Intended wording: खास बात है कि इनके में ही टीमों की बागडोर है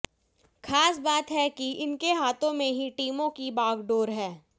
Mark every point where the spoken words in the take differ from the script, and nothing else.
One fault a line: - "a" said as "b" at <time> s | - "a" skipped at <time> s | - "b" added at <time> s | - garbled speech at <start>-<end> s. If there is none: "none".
- "हाथों" added at 2.1 s